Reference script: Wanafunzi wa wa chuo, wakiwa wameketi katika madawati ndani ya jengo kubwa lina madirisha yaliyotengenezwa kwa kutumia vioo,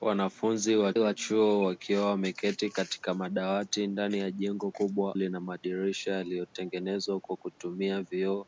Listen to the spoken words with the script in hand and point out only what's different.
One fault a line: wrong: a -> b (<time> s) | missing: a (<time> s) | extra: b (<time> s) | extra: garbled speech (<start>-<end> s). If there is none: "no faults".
no faults